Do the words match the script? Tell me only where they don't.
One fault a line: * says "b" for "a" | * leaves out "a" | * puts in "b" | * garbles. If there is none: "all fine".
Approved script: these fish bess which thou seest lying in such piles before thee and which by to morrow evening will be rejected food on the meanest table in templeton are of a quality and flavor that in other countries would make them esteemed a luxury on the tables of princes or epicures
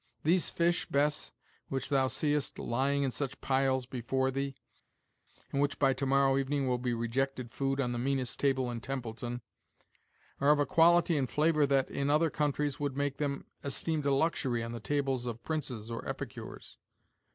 all fine